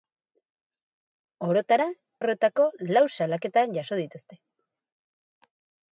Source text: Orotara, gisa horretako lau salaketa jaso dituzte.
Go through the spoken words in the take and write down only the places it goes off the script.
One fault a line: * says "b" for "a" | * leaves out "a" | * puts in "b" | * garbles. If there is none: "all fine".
* leaves out "gisa"